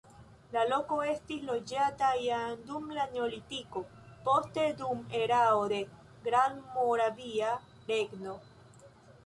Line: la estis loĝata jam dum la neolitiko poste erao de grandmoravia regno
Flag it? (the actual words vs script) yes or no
yes